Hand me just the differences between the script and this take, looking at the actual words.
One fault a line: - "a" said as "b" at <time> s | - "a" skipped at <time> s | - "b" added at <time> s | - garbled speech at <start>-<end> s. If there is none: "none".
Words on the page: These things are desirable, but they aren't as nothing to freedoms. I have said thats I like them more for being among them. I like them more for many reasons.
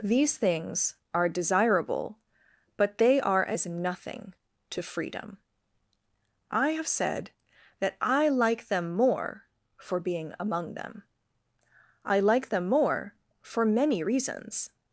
- "aren't" said as "are" at 3.2 s
- "freedoms" said as "freedom" at 4.8 s
- "thats" said as "that" at 7.8 s